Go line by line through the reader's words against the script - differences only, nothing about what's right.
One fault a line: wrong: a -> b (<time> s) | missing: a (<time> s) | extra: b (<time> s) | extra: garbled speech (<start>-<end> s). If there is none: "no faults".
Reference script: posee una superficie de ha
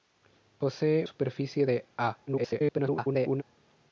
missing: una (1.1 s)
extra: garbled speech (2.3-3.4 s)